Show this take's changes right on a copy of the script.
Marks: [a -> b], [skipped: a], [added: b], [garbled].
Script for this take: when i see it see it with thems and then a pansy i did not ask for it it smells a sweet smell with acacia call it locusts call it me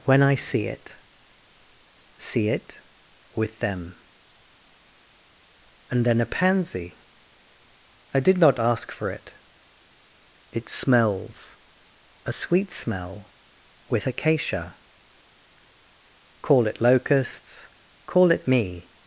when i see it see it with [thems -> them] and then a pansy i did not ask for it it smells a sweet smell with acacia call it locusts call it me